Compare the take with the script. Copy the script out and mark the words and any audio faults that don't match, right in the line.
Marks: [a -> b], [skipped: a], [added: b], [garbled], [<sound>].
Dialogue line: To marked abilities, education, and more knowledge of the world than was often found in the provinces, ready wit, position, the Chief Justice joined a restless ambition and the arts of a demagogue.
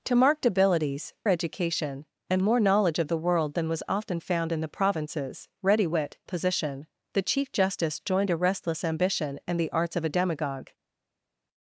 To marked abilities, education, and more knowledge of the world than was often found in the provinces, ready wit, position, the Chief Justice joined a restless ambition and the arts of a demagogue.